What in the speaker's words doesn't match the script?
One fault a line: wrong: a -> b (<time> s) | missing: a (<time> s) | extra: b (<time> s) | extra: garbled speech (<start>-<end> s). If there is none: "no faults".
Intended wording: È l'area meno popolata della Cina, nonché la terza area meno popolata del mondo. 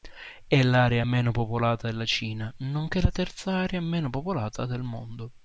no faults